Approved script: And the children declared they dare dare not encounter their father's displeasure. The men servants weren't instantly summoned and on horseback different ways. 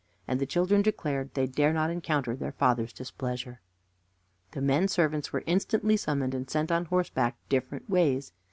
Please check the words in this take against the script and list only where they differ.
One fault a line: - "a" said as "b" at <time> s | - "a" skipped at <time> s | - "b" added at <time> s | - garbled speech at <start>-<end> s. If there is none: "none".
- "dare" skipped at 1.7 s
- "weren't" said as "were" at 5.3 s
- "sent" added at 6.5 s